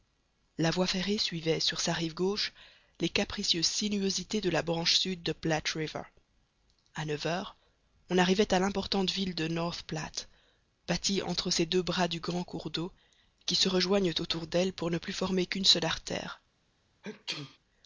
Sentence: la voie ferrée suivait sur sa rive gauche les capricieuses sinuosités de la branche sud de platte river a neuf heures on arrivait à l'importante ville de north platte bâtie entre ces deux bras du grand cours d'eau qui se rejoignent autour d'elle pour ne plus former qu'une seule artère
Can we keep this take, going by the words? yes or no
yes